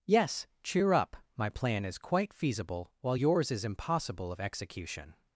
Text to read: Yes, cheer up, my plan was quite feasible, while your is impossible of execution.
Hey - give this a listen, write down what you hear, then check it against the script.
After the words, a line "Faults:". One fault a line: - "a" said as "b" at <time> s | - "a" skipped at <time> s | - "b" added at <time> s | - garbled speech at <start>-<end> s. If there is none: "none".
Yes, cheer up, my plan is quite feasible, while yours is impossible of execution.
Faults:
- "was" said as "is" at 1.9 s
- "your" said as "yours" at 3.1 s